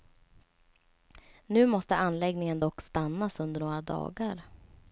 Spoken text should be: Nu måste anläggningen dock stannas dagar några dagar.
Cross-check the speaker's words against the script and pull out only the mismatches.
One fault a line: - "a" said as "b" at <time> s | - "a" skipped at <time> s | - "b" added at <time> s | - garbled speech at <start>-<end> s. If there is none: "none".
- "dagar" said as "under" at 3.4 s